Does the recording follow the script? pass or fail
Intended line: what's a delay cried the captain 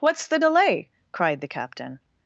fail